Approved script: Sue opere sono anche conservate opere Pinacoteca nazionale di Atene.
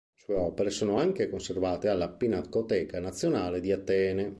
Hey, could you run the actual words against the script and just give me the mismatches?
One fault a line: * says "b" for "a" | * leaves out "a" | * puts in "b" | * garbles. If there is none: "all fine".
* says "alla" for "opere"